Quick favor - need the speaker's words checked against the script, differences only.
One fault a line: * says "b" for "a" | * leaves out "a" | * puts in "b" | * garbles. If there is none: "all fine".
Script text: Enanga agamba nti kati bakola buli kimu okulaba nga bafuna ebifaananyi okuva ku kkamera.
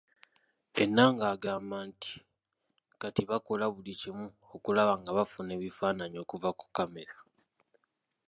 all fine